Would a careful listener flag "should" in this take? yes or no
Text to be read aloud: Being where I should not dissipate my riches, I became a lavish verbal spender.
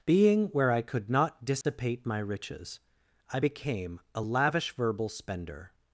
yes